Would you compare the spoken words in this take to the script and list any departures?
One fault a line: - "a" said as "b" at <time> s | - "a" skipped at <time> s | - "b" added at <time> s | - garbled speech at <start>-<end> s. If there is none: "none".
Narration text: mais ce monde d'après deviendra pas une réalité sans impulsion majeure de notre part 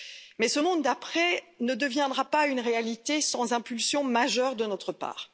- "ne" added at 1.6 s